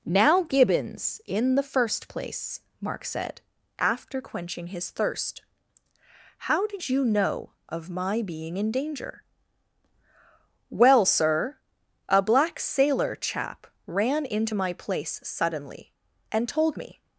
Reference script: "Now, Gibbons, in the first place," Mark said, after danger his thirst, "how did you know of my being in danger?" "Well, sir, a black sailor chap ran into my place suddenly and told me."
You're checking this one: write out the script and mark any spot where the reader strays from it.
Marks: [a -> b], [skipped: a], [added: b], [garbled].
"Now, Gibbons, in the first place," Mark said, after [danger -> quenching] his thirst, "how did you know of my being in danger?" "Well, sir, a black sailor chap ran into my place suddenly and told me."